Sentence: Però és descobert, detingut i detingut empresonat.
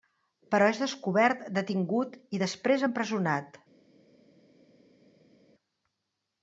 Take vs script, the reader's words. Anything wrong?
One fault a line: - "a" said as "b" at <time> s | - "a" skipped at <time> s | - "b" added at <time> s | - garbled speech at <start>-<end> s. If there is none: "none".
- "detingut" said as "després" at 2.4 s